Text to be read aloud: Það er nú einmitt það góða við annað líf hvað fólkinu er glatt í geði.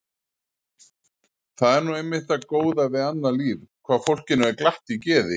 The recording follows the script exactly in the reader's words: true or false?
true